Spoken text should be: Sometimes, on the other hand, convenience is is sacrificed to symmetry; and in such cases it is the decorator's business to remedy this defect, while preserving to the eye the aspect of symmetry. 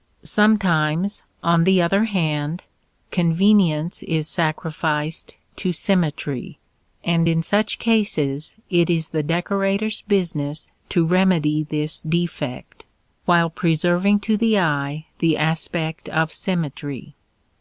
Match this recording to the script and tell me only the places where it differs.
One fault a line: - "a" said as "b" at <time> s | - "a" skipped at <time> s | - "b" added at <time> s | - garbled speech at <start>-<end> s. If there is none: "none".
- "is" skipped at 4.3 s